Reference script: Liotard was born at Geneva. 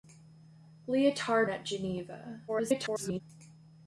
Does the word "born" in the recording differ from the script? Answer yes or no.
yes